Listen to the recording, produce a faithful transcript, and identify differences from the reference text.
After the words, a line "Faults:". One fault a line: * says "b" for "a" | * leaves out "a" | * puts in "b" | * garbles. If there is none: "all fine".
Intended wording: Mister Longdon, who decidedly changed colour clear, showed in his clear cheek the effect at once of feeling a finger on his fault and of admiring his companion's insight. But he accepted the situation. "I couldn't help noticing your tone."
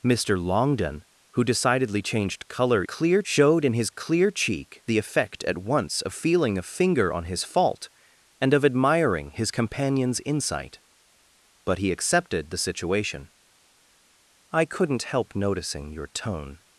Mister Longdon, who decidedly changed colour clear, showed in his clear cheek the effect at once of feeling a finger on his fault and of admiring his companion's insight. But he accepted the situation. "I couldn't help noticing your tone."
Faults:
all fine